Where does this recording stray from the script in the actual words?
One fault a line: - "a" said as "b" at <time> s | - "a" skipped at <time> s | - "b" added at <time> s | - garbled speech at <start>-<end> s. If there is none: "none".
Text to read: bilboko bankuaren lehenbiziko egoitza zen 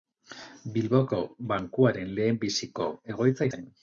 none